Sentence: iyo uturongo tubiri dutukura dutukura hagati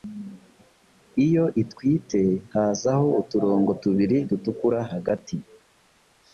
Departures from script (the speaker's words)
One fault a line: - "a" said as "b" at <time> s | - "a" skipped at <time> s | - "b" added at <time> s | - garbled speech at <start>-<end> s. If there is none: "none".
- "itwite hazaho" added at 1.6 s
- "dutukura" skipped at 4.8 s